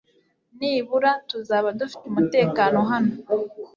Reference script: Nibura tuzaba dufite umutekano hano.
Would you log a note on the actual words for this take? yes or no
no